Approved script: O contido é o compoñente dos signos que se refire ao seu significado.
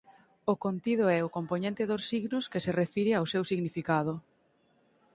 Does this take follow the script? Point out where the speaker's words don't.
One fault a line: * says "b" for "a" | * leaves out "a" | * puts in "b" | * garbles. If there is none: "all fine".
all fine